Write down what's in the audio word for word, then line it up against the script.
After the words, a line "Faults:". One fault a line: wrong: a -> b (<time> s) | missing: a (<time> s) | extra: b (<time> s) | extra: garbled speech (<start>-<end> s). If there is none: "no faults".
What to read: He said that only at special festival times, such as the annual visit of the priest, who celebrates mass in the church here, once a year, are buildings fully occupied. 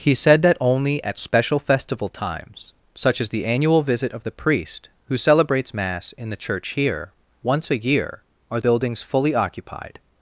He said that only at special festival times, such as the annual visit of the priest, who celebrates mass in the church here, once a year, are buildings fully occupied.
Faults:
no faults